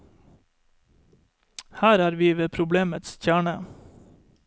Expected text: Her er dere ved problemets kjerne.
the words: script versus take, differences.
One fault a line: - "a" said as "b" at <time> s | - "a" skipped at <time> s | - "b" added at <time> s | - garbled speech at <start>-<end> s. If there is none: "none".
- "dere" said as "vi" at 2.1 s